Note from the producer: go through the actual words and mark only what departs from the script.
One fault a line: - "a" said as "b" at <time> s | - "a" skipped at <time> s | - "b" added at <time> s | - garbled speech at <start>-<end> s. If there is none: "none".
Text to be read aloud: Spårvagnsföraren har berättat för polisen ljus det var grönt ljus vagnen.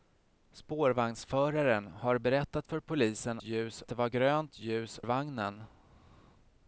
none